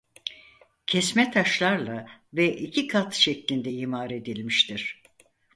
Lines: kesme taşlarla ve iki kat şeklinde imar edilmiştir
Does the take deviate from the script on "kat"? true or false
false